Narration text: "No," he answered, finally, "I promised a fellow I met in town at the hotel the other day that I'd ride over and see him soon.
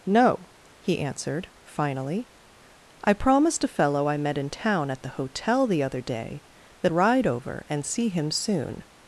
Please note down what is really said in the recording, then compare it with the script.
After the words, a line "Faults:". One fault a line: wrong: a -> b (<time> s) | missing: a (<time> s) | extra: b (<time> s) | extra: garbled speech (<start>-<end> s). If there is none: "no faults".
"No," he answered, finally, "I promised a fellow I met in town at the hotel the other day that Ride over and see him soon.
Faults:
missing: I'd (6.9 s)